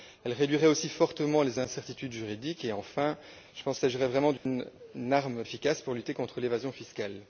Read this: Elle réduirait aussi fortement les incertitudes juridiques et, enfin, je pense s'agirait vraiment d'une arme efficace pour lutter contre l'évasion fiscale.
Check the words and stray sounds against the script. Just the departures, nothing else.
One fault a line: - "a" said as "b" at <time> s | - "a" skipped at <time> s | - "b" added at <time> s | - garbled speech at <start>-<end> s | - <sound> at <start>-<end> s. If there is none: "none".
- dropout at 4.4-4.5 s